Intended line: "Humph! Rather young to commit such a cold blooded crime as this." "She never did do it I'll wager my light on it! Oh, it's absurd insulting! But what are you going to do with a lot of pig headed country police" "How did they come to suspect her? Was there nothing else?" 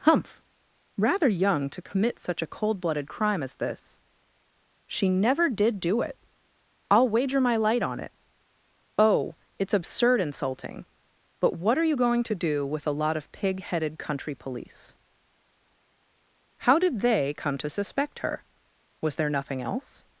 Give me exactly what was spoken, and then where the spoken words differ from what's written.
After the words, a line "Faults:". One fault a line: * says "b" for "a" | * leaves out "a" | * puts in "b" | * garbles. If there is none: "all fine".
"Humph! Rather young to commit such a cold blooded crime as this." "She never did do it I'll wager my light on it! Oh, it's absurd insulting! But what are you going to do with a lot of pig headed country police" "How did they come to suspect her? Was there nothing else?"
Faults:
all fine